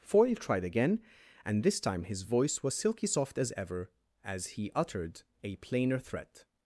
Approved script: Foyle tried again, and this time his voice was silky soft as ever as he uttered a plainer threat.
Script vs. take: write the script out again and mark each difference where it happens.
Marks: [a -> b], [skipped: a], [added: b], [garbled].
Foyle tried again, and this time his voice was silky soft as ever as he uttered a plainer threat.